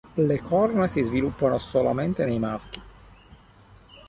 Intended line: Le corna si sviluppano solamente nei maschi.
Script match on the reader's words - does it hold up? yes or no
yes